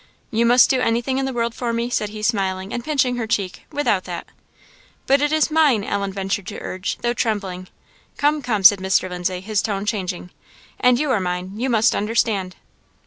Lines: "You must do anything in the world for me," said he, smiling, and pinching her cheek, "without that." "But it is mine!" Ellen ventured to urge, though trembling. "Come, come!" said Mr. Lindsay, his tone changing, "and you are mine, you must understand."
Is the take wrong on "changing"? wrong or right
right